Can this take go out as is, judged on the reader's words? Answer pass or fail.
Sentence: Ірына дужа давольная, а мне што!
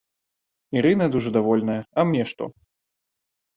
pass